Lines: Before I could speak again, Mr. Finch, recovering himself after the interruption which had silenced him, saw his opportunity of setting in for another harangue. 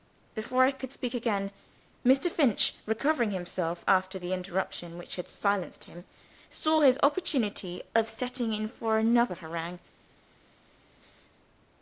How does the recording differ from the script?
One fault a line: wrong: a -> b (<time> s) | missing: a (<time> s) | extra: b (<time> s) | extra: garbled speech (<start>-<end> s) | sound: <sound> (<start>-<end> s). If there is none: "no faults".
no faults